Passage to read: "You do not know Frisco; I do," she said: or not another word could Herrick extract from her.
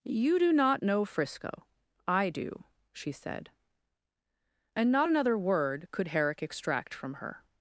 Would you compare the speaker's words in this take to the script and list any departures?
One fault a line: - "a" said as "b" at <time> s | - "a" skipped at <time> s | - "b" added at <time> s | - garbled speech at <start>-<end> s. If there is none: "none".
- "or" said as "and" at 4.7 s